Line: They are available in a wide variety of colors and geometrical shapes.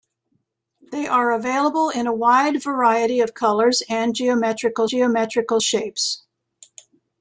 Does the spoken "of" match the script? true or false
true